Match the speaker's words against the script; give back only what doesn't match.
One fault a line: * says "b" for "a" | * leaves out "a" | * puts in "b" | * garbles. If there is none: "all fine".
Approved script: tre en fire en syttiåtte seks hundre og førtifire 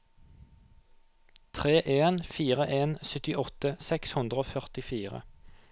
all fine